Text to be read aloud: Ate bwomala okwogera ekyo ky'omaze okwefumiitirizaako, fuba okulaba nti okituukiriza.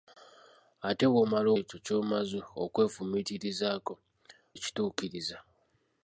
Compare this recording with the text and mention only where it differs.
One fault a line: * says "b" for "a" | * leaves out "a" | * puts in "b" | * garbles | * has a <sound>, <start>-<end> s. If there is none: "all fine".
* leaves out "okwogera"
* leaves out "fuba okulaba nti"